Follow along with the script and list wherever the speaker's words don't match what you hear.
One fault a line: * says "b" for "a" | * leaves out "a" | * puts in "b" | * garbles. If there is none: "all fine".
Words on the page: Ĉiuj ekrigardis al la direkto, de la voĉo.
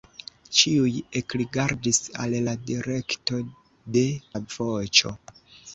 all fine